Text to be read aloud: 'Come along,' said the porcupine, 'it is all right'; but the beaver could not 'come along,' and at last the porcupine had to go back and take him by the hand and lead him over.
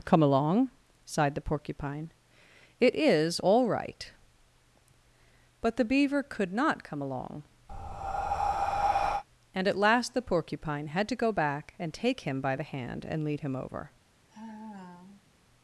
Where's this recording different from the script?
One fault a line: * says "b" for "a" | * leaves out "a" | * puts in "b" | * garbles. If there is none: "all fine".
* says "sighed" for "said"